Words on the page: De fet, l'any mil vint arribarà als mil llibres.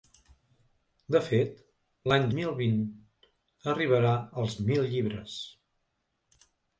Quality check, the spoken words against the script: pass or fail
pass